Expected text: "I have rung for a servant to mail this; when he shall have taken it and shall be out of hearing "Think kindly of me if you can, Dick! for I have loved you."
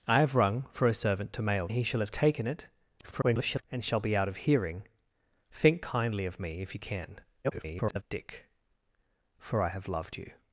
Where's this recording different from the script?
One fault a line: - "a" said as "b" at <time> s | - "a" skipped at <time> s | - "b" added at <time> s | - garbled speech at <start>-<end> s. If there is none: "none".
- "this when" skipped at 1.7 s
- garbled speech at 3.0-3.6 s
- garbled speech at 7.4-8.0 s